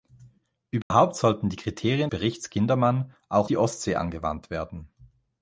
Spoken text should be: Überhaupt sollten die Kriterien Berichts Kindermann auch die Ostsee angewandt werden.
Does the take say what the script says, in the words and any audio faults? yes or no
no